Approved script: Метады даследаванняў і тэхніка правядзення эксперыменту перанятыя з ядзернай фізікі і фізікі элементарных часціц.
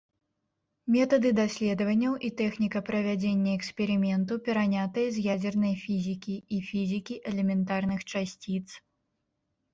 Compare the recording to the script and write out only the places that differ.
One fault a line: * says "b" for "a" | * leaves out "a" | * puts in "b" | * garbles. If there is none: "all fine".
all fine